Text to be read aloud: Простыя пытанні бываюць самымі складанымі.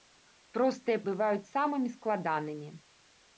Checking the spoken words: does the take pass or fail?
fail